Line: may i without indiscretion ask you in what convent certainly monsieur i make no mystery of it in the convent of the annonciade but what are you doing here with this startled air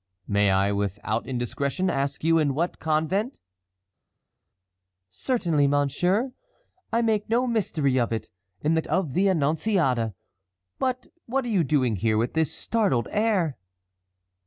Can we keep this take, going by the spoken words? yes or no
no